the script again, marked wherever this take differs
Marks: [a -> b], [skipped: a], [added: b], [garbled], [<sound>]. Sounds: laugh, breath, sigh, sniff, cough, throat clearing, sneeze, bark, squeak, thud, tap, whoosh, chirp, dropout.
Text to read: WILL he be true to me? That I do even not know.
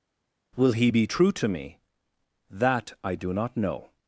WILL he be true to me? That I do [skipped: even] not know.